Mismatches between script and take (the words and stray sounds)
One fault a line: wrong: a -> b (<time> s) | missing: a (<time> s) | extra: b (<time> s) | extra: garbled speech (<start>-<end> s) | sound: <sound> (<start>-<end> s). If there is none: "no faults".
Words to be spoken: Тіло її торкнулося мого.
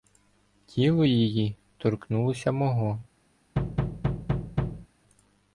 sound: thud (3.6-4.9 s)